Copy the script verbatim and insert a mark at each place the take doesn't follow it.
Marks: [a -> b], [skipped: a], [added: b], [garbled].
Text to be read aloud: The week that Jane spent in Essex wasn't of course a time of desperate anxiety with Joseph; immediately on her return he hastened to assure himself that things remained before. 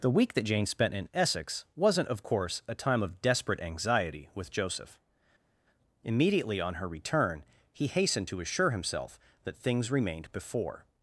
The week that Jane spent in Essex wasn't of course a time of desperate anxiety with Joseph; immediately on her return he hastened to assure himself that things remained before.